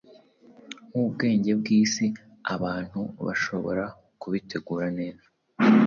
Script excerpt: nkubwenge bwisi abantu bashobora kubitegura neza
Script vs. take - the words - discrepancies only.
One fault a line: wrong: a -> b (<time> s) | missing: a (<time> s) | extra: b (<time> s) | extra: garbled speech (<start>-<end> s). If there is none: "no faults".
no faults